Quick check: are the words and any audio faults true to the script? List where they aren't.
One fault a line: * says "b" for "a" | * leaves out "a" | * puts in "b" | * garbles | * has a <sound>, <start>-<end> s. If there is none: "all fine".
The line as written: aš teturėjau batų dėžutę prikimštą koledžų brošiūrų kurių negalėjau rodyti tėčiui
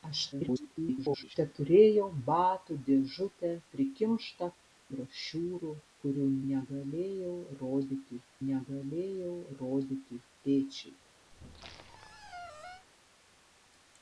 * garbles
* leaves out "koledžų"
* puts in "negalėjau rodyti"
* has a squeak, 11.3-12.9 s